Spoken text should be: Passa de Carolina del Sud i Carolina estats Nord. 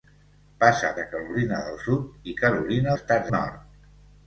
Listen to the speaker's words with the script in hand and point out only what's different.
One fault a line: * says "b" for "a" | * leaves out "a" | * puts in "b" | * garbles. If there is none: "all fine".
all fine